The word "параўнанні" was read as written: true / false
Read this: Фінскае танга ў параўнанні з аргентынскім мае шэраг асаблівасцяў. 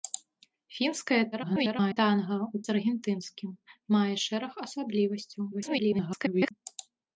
false